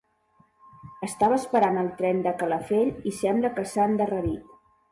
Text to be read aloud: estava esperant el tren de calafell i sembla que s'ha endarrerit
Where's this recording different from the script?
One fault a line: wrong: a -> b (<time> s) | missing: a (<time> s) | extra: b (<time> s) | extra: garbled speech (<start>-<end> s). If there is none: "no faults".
no faults